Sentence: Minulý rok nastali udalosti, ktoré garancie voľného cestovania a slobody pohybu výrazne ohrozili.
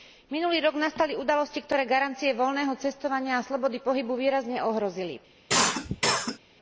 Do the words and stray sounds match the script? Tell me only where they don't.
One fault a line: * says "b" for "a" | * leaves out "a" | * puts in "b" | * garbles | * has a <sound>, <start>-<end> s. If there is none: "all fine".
* has a cough, 5.5-6.4 s